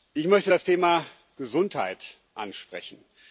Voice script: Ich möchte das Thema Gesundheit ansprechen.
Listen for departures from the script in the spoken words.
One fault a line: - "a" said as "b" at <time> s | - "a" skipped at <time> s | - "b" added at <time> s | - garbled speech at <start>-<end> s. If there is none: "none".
none